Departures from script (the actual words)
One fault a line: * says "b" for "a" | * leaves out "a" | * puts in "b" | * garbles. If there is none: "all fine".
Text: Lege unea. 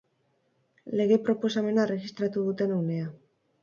* puts in "proposamena erregistratu duten"